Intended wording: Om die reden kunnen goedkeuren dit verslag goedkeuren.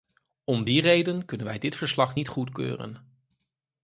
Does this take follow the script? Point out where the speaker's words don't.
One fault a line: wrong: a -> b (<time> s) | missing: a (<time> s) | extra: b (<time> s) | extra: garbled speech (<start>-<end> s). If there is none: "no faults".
wrong: goedkeuren -> wij (1.5 s)
extra: niet (2.1 s)